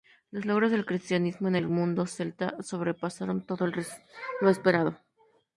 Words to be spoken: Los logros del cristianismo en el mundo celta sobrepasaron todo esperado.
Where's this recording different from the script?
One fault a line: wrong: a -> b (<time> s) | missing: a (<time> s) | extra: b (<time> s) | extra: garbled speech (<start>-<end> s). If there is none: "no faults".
extra: lo (3.7 s)